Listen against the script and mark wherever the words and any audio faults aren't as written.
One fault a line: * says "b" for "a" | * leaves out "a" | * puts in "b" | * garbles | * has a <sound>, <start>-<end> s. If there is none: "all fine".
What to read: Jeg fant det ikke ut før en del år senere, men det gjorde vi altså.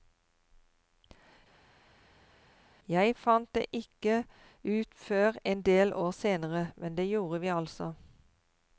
all fine